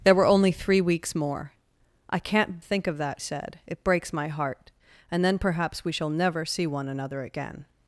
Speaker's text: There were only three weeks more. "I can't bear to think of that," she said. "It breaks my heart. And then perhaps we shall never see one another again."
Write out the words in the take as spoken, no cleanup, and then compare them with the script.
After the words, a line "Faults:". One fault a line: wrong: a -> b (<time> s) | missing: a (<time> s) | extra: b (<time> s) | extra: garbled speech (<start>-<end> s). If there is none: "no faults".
There were only three weeks more. "I can't think of that," said. "It breaks my heart. And then perhaps we shall never see one another again."
Faults:
missing: bear to (2.6 s)
missing: she (3.2 s)